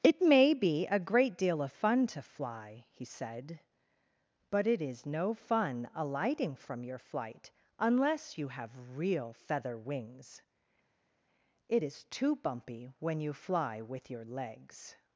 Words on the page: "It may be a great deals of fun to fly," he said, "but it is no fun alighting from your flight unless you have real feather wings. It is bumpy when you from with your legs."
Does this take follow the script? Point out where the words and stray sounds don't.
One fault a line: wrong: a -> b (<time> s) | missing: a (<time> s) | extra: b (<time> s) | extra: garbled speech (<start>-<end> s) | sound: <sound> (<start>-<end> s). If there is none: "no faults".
wrong: deals -> deal (1.4 s)
extra: too (12.0 s)
wrong: from -> fly (13.3 s)